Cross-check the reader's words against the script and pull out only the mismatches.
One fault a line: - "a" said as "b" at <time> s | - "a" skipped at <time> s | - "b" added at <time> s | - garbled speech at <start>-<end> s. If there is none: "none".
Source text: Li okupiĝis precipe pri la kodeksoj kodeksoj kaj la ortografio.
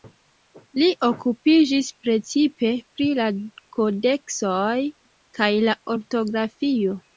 - "kodeksoj" skipped at 4.8 s